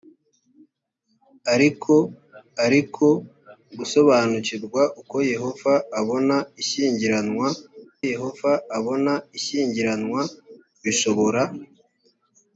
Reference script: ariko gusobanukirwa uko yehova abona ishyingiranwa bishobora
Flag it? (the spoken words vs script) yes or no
yes